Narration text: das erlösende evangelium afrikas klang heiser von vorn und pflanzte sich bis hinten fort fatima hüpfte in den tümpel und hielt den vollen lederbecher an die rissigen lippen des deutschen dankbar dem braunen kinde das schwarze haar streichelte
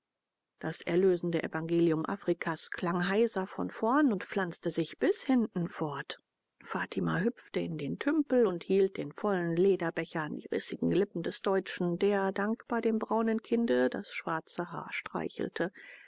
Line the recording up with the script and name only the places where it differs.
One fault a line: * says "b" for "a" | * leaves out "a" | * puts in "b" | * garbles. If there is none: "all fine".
* puts in "der"